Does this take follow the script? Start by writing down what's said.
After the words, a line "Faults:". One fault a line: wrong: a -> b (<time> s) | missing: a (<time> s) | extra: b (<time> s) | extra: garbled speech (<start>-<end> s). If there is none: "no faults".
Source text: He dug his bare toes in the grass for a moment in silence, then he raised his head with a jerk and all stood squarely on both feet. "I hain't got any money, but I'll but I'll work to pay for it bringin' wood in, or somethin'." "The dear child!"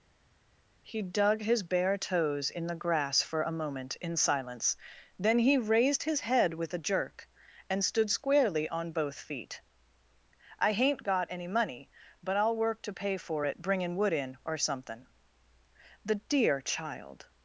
He dug his bare toes in the grass for a moment in silence, then he raised his head with a jerk and stood squarely on both feet. "I hain't got any money, but I'll work to pay for it bringin' wood in, or somethin'." "The dear child!"
Faults:
missing: all (7.8 s)
missing: but I'll (12.6 s)